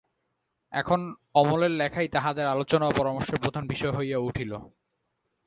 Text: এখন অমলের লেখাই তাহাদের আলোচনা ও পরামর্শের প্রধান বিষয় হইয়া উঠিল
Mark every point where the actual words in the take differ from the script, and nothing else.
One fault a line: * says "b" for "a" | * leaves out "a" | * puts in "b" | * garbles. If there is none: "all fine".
all fine